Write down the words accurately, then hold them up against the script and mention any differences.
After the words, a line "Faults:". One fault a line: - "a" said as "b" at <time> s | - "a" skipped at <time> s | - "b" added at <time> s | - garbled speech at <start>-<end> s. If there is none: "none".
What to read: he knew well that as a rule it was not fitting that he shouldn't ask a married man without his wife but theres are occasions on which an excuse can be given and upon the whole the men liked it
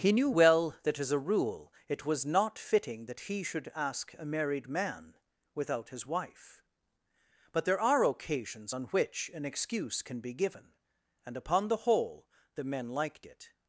he knew well that as a rule it was not fitting that he should ask a married man without his wife but there are occasions on which an excuse can be given and upon the whole the men liked it
Faults:
- "shouldn't" said as "should" at 3.4 s
- "theres" said as "there" at 7.6 s